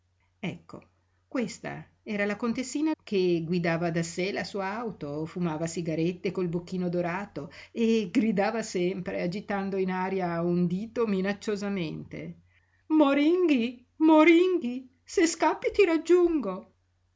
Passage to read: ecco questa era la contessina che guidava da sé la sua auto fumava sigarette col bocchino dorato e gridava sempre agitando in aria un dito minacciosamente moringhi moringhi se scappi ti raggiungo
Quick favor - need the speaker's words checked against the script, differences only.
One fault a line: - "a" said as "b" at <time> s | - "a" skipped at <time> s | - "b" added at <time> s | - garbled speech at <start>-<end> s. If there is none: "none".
none